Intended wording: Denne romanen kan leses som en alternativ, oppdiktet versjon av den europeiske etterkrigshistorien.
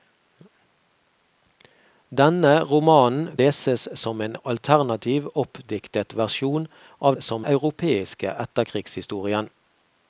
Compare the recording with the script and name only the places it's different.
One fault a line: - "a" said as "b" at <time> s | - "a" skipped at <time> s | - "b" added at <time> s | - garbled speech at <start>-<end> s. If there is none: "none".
- "kan" skipped at 3.4 s
- "den" said as "som" at 7.2 s